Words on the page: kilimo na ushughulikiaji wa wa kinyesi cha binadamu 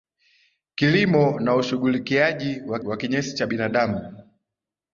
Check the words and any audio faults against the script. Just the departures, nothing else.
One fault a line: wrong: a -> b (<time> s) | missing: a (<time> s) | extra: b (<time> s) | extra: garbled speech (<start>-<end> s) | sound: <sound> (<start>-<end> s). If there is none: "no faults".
no faults